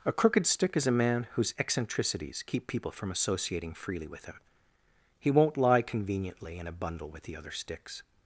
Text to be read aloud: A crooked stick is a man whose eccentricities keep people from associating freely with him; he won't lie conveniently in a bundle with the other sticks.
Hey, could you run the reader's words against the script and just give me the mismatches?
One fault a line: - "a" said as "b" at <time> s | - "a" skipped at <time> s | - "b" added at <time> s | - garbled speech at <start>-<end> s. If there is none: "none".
none